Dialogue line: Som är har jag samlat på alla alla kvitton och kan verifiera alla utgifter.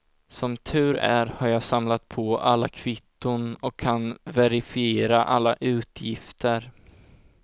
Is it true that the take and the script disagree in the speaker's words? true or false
true